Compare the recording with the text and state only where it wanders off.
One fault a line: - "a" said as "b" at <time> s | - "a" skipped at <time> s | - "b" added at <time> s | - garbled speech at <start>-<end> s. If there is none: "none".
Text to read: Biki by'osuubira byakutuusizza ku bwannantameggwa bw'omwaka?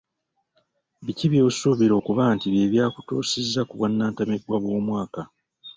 - "okuba nti bye" added at 2.0 s